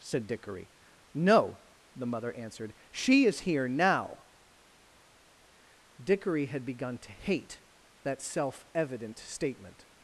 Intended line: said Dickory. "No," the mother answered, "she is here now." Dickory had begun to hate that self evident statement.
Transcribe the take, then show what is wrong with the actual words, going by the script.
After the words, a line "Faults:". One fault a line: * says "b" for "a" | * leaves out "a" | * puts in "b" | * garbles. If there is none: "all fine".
said Dickory. "No," the mother answered, "she is here now." Dickory had begun to hate that self evident statement.
Faults:
all fine